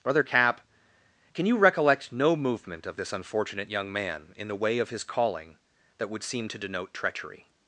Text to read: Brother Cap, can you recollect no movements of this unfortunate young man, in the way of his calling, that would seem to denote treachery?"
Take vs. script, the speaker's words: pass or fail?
fail